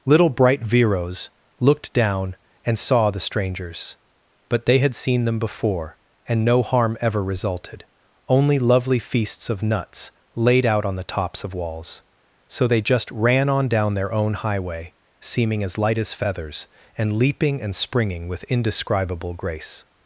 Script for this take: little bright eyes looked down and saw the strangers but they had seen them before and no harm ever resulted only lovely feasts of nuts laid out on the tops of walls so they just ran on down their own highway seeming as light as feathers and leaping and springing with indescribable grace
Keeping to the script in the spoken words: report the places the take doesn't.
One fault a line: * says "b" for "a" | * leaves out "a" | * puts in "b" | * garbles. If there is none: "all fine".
* says "viros" for "eyes"